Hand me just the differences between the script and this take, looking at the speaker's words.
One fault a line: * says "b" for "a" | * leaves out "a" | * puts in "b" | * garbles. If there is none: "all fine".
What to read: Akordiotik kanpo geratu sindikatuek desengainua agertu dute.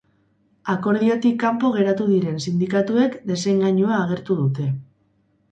* puts in "diren"